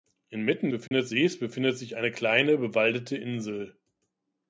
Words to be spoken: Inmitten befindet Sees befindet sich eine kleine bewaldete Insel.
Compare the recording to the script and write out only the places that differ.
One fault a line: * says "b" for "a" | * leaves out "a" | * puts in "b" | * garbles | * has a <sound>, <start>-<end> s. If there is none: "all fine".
* has a dropout, 0.9-0.9 s